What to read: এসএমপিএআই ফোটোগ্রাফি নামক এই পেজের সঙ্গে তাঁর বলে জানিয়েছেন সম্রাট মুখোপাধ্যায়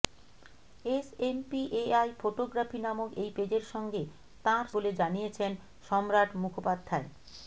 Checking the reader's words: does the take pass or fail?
pass